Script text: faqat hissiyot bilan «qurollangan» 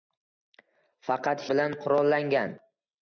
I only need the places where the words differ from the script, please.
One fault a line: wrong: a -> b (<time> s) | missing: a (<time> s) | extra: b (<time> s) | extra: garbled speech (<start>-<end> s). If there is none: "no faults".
missing: hissiyot (1.4 s)